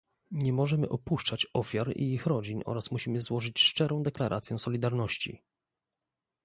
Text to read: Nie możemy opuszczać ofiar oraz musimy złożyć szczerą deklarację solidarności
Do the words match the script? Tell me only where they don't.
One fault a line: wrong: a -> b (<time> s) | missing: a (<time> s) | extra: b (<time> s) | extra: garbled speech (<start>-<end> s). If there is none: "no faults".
extra: i ich rodzin (2.0 s)